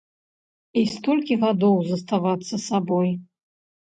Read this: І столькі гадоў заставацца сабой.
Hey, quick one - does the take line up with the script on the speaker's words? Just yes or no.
yes